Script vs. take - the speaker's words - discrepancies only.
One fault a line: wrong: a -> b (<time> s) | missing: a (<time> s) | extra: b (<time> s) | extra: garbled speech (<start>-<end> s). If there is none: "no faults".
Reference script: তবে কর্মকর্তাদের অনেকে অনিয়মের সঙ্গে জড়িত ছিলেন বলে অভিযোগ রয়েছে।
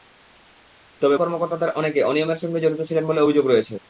no faults